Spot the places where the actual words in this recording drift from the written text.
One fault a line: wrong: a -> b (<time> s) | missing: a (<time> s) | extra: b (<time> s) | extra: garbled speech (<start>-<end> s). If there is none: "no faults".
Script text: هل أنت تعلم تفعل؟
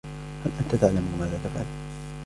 extra: ماذا (1.2 s)